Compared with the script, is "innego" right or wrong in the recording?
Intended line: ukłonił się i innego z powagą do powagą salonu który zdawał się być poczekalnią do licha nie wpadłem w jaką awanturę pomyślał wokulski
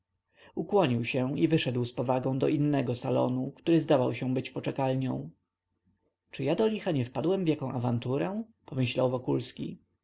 wrong